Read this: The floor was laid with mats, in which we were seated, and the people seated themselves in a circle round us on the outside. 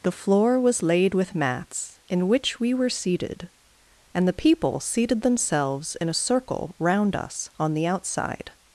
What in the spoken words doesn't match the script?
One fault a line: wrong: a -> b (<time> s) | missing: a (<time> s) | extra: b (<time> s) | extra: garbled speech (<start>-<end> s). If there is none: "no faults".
no faults